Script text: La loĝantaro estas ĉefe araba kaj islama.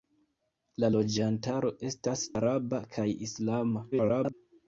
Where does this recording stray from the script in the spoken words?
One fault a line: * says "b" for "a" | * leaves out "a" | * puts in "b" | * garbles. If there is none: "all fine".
* leaves out "ĉefe"
* garbles